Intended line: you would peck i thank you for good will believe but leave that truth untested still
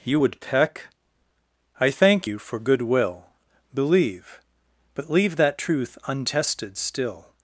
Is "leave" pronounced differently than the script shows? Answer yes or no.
no